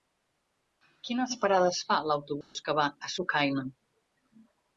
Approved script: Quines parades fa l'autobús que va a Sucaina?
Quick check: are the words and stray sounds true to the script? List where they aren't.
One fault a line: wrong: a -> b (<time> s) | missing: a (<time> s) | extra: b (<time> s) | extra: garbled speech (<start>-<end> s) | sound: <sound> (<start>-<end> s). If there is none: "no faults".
sound: dropout (2.4-2.6 s)